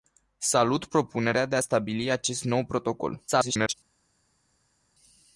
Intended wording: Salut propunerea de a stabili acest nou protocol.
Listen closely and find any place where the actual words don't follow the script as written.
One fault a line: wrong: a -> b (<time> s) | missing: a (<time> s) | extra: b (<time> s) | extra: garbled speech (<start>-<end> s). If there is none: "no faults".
extra: garbled speech (3.3-3.7 s)